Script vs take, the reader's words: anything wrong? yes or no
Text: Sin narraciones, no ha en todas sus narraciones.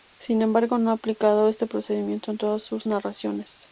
yes